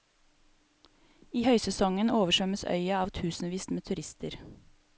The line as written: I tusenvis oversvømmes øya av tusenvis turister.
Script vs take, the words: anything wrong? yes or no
yes